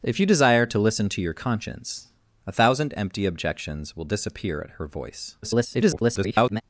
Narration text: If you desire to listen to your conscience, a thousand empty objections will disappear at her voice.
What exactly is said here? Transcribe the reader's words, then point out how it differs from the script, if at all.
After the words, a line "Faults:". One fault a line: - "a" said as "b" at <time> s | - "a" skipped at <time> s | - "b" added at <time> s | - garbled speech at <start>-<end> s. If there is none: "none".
If you desire to listen to your conscience, a thousand empty objections will disappear at her voice. [garbled]
Faults:
- garbled speech at 5.4-6.6 s